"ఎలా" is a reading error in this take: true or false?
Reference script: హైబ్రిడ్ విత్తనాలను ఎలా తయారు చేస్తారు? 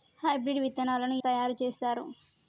true